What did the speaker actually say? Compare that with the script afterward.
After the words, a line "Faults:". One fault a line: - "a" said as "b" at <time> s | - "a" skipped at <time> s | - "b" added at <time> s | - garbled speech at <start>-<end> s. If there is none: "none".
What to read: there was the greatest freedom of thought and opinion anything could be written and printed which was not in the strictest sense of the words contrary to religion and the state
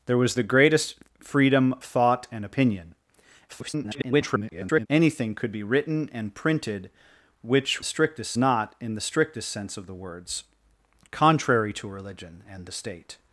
there was the greatest freedom thought and opinion [garbled] anything could be written and printed which strictest not in the strictest sense of the words contrary to religion and the state
Faults:
- "of" skipped at 1.8 s
- garbled speech at 3.5-4.9 s
- "was" said as "strictest" at 7.8 s